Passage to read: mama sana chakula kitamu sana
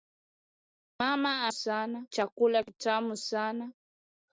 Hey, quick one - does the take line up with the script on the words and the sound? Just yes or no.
yes